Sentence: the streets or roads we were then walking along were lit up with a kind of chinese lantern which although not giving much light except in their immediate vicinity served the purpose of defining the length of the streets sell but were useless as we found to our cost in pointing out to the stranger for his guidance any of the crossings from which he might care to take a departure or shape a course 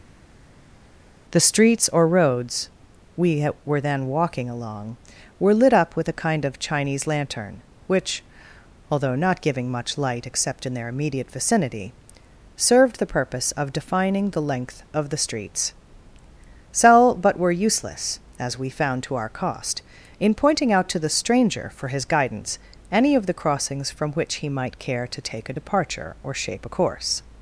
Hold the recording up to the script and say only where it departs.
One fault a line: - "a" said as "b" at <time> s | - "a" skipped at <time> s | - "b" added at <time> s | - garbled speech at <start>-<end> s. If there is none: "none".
none